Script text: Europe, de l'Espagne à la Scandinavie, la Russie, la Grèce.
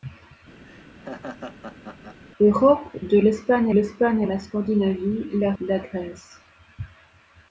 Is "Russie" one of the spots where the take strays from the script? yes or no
yes